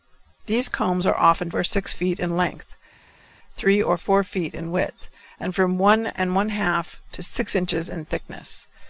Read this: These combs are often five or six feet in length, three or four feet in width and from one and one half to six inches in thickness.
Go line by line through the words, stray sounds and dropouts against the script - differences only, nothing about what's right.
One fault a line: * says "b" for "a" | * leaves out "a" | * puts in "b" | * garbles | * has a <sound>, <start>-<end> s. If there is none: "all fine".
* leaves out "five"